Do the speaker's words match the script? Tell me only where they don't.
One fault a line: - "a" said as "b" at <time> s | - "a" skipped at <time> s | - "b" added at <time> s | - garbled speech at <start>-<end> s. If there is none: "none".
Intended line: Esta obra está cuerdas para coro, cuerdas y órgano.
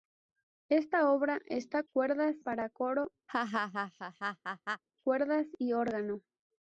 none